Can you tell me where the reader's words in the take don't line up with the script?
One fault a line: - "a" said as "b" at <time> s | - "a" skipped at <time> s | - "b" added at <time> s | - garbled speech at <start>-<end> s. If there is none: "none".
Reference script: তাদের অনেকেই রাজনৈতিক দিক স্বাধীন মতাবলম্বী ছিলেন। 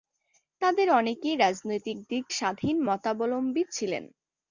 none